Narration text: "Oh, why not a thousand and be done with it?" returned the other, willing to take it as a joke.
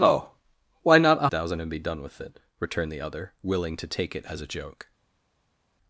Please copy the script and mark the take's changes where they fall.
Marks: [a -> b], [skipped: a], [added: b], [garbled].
"Oh, why not a thousand and be done with it?" returned the other, willing to take it as a joke.